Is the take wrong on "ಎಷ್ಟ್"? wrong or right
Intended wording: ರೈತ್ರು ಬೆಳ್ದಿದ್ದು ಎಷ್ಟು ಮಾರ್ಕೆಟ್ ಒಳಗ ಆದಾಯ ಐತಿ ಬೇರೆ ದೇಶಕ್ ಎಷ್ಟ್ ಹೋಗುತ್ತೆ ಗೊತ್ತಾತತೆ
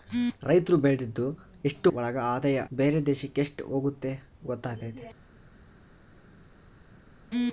right